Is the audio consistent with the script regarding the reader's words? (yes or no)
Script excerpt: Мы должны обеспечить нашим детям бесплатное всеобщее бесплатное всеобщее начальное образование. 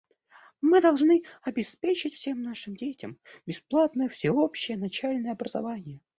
no